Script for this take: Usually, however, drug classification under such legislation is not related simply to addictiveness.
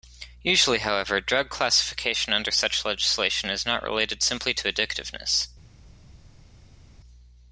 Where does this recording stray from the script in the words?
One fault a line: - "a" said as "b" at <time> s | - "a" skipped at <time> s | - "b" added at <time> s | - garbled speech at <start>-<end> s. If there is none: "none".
none